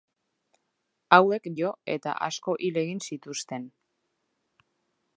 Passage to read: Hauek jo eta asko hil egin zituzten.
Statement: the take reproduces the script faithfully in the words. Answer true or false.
true